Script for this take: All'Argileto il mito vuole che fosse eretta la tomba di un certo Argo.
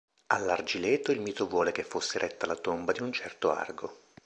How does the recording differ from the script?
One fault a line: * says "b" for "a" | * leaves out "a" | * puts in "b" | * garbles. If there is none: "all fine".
all fine